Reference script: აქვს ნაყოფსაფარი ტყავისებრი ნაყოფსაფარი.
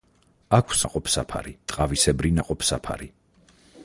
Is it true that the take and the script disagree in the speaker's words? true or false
false